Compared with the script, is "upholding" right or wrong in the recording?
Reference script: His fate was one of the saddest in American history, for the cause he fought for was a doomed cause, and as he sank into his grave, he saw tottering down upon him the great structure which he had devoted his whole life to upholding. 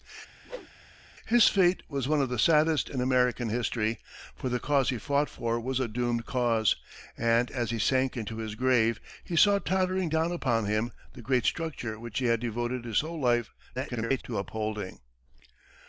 right